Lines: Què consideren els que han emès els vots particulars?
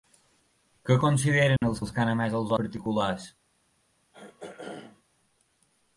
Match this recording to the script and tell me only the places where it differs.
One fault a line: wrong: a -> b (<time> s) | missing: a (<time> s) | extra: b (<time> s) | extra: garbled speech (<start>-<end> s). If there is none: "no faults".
extra: els (1.8 s)
missing: vots (2.5 s)